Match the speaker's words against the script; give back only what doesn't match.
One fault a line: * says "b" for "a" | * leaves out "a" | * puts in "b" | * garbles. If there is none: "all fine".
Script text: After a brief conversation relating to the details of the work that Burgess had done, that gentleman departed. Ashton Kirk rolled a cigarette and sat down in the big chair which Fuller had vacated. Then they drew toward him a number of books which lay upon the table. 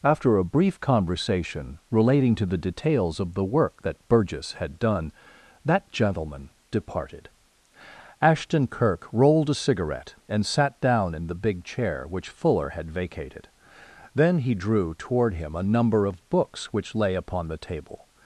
* says "he" for "they"